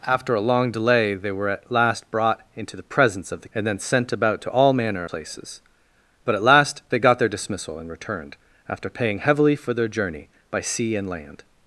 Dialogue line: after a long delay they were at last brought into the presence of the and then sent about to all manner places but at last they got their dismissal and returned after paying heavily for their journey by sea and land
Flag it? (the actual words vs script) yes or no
no